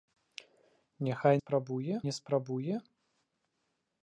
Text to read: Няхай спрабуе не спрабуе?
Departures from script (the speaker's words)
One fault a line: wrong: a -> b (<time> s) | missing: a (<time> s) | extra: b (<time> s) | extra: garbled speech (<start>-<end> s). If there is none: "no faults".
no faults